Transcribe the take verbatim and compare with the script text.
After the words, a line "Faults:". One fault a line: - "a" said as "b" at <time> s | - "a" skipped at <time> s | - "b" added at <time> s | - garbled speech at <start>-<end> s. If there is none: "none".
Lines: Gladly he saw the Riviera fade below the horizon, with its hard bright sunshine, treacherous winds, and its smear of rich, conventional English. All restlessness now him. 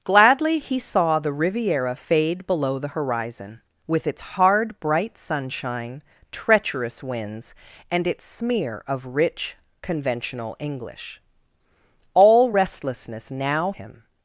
Gladly he saw the Riviera fade below the horizon, with its hard bright sunshine, treacherous winds, and its smear of rich, conventional English. All restlessness now him.
Faults:
none